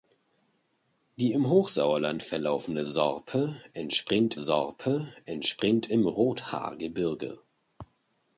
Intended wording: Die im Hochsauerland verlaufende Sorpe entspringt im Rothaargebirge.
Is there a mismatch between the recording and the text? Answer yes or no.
yes